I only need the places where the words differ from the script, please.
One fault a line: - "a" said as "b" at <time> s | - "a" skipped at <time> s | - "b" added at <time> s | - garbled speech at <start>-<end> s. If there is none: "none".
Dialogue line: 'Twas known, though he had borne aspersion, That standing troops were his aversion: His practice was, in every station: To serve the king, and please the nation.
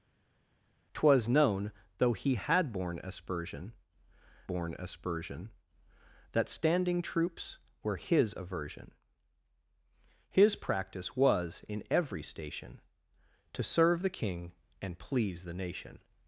- "borne aspersion" added at 4.5 s